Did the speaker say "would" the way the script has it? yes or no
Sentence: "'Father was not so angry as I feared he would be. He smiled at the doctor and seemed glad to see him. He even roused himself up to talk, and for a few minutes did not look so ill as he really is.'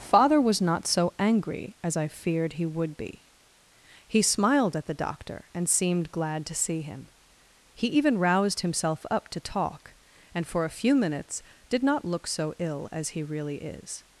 yes